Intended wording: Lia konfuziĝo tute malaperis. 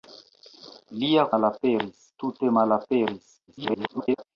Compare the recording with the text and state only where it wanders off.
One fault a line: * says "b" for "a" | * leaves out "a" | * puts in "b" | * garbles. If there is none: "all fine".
* says "malaperis" for "konfuziĝo"
* garbles